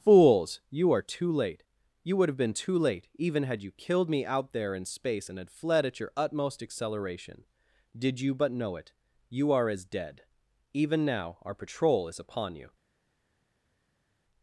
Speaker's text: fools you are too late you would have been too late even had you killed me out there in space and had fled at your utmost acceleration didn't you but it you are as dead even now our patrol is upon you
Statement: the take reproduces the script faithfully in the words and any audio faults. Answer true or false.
false